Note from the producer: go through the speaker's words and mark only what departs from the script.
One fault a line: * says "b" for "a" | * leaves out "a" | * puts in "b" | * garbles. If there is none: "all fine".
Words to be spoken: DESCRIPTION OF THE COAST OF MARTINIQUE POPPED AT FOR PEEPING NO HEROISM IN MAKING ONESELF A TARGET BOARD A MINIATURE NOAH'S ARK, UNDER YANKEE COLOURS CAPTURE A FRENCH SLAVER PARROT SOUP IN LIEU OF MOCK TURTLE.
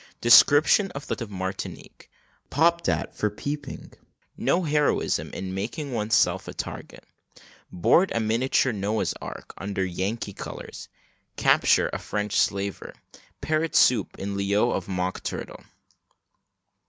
* leaves out "COAST"